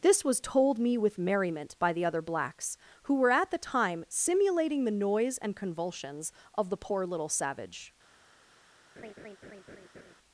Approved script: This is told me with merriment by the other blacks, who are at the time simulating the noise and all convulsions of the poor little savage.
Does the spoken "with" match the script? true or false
true